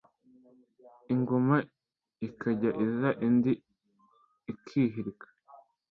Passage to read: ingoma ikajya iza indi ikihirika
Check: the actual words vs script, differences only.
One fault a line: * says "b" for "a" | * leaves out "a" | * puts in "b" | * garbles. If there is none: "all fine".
all fine